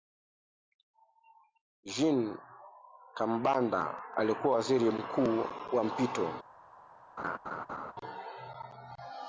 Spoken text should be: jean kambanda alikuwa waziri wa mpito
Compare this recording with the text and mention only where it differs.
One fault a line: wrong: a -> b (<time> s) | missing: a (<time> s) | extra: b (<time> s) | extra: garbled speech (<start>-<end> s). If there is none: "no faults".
extra: mkuu (4.9 s)